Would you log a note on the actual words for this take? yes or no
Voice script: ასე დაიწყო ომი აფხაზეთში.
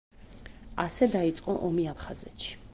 no